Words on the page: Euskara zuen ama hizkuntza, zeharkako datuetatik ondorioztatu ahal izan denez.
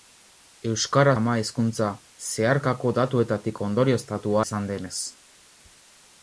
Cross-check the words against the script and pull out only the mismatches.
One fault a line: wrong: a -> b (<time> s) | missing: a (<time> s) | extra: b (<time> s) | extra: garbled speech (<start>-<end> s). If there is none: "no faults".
missing: zuen (1.1 s)
missing: ahal (4.4 s)